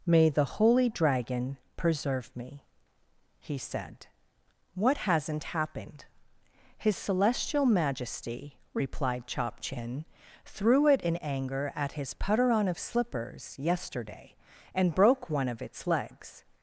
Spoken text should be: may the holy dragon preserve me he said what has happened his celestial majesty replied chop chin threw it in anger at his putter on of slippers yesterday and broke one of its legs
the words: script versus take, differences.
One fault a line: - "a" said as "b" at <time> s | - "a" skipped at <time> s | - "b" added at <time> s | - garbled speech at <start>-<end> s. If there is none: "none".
- "has" said as "hasn't" at 5.0 s